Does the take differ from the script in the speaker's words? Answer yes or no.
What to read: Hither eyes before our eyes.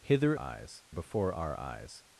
no